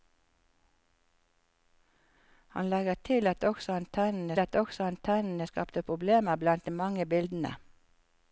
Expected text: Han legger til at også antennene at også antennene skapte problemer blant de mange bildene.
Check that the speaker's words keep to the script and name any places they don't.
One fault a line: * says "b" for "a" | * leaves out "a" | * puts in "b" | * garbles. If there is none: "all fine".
all fine